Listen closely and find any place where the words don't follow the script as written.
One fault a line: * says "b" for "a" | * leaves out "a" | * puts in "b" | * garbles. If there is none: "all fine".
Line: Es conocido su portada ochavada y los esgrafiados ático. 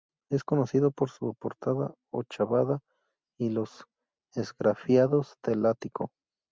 * puts in "por"
* puts in "del"